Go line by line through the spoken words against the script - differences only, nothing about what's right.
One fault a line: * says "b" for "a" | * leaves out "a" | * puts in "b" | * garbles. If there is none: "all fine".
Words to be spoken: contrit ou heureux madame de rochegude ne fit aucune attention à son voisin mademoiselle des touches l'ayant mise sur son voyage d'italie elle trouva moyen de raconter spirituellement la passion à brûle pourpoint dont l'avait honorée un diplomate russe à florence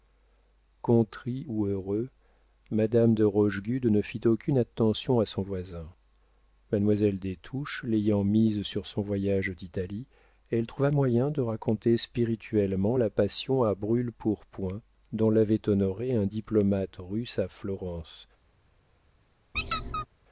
all fine